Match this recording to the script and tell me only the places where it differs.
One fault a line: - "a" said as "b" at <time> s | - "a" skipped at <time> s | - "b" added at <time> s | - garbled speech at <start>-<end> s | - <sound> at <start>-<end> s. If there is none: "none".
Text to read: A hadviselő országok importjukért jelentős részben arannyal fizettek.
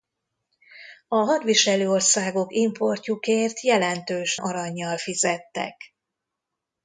- "részben" skipped at 4.4 s